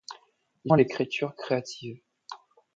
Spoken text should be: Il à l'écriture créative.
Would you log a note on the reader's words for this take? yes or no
no